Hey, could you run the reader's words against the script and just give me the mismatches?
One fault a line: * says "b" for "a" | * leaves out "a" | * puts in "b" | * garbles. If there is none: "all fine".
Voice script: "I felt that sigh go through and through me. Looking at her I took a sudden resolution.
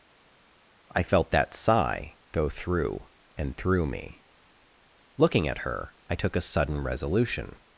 all fine